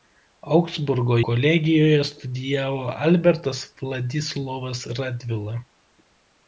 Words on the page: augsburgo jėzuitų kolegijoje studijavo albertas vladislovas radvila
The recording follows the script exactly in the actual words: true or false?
false